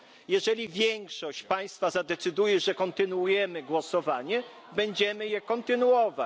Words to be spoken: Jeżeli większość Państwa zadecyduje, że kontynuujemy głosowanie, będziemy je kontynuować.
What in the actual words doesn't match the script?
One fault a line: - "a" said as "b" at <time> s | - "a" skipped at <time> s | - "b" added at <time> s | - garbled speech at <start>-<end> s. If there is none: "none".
none